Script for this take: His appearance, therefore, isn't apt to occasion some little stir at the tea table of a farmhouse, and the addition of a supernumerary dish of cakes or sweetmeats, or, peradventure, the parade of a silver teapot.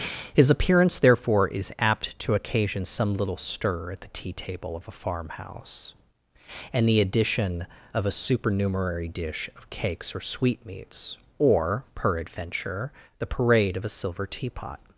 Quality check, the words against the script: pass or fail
fail